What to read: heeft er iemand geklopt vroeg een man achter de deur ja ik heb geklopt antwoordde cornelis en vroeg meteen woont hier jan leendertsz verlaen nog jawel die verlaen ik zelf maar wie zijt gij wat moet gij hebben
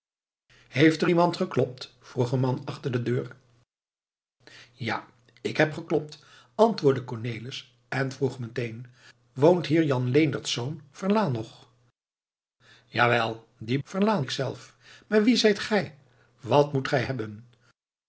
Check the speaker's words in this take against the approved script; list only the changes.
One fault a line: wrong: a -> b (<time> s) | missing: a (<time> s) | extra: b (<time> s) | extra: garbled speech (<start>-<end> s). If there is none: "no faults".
no faults